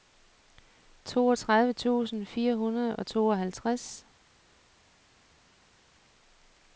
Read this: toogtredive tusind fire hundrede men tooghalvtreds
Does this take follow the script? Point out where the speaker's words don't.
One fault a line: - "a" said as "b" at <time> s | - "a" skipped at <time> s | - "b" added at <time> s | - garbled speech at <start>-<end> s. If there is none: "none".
- "men" said as "og" at 3.0 s